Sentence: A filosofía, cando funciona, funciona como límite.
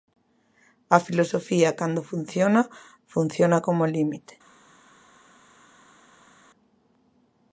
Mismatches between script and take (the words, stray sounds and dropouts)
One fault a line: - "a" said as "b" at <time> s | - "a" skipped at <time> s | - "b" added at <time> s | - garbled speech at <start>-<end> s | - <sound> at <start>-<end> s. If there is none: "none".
none